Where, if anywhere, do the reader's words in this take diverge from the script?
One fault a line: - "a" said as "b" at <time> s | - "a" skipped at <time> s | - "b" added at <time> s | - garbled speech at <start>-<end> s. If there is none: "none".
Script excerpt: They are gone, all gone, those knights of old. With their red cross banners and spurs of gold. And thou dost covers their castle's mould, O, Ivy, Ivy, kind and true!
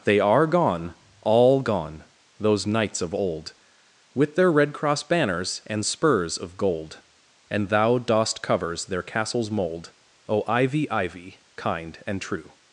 none